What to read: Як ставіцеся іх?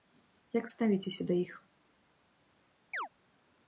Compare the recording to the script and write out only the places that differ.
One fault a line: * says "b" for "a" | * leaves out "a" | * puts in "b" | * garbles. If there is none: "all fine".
* puts in "да"